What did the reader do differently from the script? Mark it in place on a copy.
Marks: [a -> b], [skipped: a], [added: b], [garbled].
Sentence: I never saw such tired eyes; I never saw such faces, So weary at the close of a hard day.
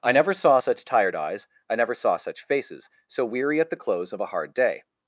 I never saw such tired eyes; I never saw such faces, So weary at the close of a hard day.